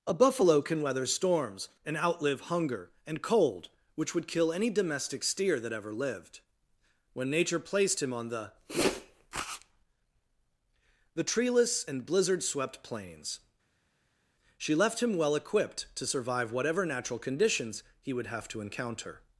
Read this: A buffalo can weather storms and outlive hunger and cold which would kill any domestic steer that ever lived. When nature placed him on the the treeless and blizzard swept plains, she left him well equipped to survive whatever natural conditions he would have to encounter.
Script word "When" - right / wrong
right